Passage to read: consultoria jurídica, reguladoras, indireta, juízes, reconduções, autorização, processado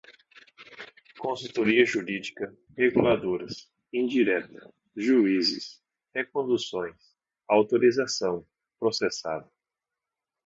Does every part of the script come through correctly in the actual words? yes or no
yes